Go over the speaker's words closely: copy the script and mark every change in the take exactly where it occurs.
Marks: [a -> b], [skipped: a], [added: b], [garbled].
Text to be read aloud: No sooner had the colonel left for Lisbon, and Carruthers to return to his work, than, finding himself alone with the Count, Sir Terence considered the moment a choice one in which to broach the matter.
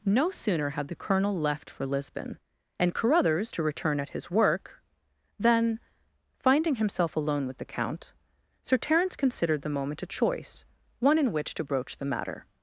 No sooner had the colonel left for Lisbon, and Carruthers to return [to -> at] his work, than, finding himself alone with the Count, Sir Terence considered the moment a choice one in which to broach the matter.